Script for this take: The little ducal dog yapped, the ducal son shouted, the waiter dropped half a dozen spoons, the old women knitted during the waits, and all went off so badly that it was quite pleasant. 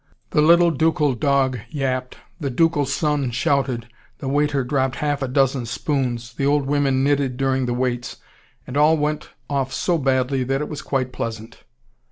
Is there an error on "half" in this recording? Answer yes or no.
no